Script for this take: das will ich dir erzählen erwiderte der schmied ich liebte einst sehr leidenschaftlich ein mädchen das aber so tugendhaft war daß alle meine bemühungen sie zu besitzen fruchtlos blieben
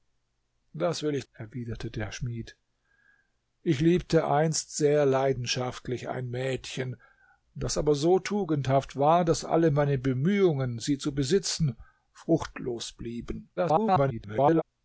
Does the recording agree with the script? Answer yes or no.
no